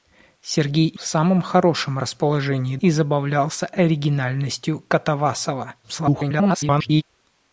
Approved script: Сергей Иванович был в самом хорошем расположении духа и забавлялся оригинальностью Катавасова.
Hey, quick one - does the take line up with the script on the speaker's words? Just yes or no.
no